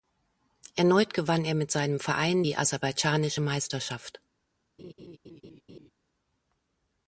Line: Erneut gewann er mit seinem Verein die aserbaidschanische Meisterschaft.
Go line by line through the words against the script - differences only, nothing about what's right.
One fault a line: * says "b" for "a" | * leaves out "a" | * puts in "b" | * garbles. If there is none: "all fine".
all fine